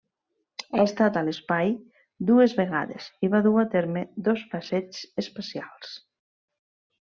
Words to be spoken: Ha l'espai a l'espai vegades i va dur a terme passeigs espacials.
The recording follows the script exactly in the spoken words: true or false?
false